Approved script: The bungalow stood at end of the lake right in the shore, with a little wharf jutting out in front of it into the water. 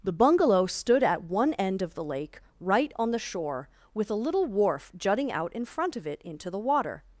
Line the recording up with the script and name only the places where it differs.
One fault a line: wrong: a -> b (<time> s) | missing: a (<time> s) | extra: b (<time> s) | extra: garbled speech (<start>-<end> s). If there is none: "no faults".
extra: one (1.2 s)
wrong: in -> on (3.0 s)